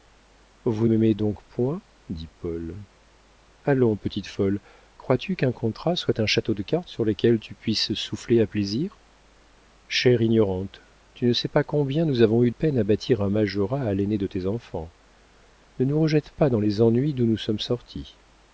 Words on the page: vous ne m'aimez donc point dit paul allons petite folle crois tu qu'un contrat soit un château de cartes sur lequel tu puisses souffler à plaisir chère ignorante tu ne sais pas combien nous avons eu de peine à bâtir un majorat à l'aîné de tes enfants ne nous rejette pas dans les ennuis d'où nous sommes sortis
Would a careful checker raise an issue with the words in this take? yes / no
yes